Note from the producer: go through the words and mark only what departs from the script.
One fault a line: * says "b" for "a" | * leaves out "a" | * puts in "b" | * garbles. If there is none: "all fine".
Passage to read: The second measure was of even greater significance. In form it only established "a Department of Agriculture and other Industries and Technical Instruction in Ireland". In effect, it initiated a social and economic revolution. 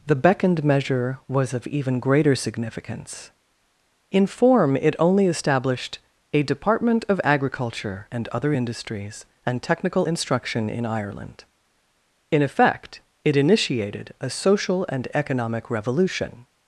* says "beckoned" for "second"